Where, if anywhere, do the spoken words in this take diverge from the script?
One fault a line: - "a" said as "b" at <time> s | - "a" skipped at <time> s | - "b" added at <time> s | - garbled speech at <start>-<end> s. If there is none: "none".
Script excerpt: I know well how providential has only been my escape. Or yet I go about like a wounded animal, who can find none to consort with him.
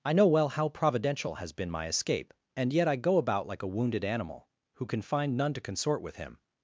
- "only" skipped at 1.5 s
- "Or" said as "And" at 2.6 s